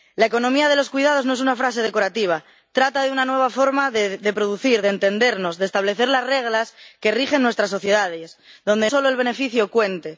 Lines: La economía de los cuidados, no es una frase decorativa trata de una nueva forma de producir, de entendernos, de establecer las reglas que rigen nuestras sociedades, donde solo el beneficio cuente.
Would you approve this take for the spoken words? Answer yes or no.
yes